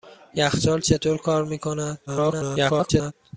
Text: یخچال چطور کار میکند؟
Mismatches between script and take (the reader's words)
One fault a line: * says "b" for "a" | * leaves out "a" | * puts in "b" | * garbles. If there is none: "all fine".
* garbles